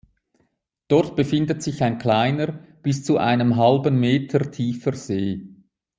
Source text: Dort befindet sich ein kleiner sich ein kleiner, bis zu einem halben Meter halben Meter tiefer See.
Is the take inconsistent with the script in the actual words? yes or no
yes